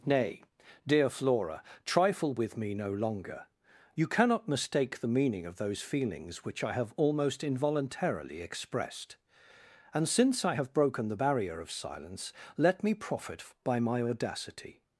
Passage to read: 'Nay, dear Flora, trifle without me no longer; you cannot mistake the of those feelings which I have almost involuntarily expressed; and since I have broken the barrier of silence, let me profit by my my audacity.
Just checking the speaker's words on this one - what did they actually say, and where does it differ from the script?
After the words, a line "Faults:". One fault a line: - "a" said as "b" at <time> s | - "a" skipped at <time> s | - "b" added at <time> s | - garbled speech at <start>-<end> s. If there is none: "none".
'Nay, dear Flora, trifle with me no longer; you cannot mistake the meaning of those feelings which I have almost involuntarily expressed; and since I have broken the barrier of silence, let me profit by my audacity.
Faults:
- "without" said as "with" at 2.3 s
- "meaning" added at 5.1 s
- "my" skipped at 14.0 s